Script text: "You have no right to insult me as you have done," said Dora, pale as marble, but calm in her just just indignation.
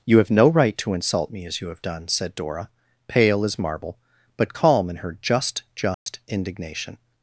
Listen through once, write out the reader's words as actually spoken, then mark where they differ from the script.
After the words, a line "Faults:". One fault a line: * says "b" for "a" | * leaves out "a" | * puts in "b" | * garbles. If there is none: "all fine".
"You have no right to insult me as you have done," said Dora, pale as marble, but calm in her just just indignation.
Faults:
all fine